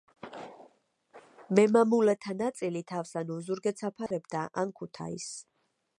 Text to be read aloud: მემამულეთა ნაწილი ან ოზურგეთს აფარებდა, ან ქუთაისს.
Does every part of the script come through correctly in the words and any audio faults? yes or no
no